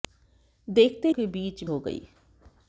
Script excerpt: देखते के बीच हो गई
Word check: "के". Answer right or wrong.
right